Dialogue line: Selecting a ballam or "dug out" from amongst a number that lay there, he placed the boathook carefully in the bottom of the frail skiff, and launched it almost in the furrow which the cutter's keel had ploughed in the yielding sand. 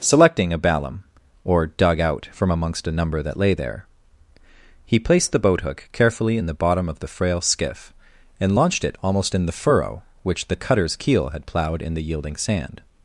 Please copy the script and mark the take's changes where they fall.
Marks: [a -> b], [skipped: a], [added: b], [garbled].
Selecting a ballam or "dug out" from amongst a number that lay there, he placed the boathook carefully in the bottom of the frail skiff, and launched it almost in the furrow which the cutter's keel had ploughed in the yielding sand.